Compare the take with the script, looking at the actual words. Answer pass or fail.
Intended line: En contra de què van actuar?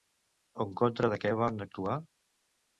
pass